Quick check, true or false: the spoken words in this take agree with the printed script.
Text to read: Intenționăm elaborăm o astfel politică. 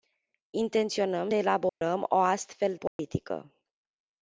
true